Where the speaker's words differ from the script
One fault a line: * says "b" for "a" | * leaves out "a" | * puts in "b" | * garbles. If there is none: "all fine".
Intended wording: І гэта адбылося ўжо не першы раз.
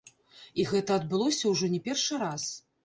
all fine